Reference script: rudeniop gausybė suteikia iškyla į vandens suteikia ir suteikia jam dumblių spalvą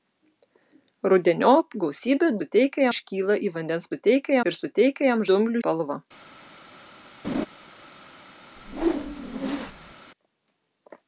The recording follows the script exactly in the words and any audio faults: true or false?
false